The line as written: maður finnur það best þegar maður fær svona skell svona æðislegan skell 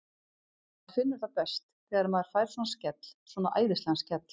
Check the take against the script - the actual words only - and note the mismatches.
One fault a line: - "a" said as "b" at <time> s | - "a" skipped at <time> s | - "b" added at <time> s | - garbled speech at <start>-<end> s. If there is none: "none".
none